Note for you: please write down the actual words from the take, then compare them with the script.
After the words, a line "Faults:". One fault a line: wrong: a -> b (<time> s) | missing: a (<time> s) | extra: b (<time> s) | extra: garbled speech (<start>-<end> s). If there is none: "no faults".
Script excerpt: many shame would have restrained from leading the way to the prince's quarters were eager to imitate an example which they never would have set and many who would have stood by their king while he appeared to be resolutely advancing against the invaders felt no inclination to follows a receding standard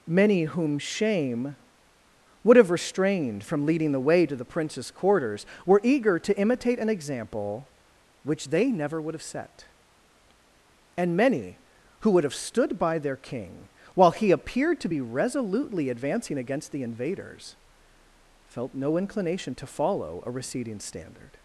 many whom shame would have restrained from leading the way to the prince's quarters were eager to imitate an example which they never would have set and many who would have stood by their king while he appeared to be resolutely advancing against the invaders felt no inclination to follow a receding standard
Faults:
extra: whom (0.4 s)
wrong: follows -> follow (19.7 s)